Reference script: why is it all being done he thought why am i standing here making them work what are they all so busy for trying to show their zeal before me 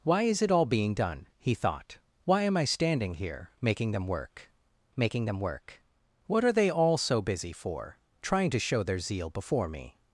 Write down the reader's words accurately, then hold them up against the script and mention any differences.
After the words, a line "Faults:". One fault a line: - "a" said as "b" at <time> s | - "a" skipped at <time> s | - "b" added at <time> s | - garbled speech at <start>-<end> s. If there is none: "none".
why is it all being done he thought why am i standing here making them work making them work what are they all so busy for trying to show their zeal before me
Faults:
- "making them work" added at 5.0 s